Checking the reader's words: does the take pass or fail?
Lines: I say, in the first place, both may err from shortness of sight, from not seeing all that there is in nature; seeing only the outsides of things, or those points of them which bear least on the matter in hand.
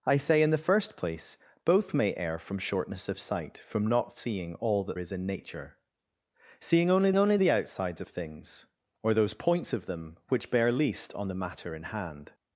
fail